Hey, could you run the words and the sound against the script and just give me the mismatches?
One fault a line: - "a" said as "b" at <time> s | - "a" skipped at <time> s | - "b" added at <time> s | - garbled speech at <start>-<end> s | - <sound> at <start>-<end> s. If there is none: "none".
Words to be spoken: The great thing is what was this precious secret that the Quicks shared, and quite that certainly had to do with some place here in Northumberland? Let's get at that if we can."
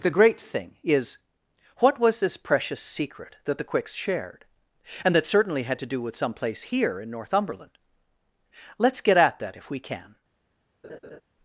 - "quite" skipped at 5.1 s
- laugh at 10.8-11.2 s